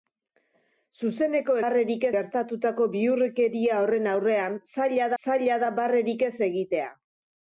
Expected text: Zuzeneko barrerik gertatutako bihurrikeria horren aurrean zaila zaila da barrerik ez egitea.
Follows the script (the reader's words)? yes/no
yes